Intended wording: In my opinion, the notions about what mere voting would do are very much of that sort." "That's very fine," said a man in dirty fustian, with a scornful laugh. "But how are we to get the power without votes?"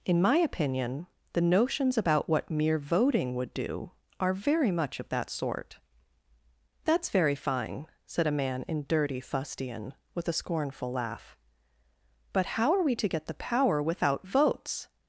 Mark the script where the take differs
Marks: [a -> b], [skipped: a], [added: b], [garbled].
In my opinion, the notions about what mere voting would do are very much of that sort." "That's very fine," said a man in dirty fustian, with a scornful laugh. "But how are we to get the power without votes?"